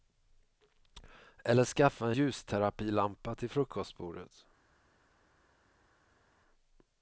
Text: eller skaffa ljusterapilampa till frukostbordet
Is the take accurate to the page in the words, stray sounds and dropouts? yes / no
yes